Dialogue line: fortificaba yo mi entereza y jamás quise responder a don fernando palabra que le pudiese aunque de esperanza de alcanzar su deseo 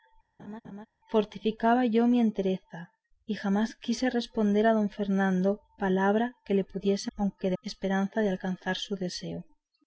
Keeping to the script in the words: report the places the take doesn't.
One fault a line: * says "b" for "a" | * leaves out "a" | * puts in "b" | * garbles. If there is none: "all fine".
all fine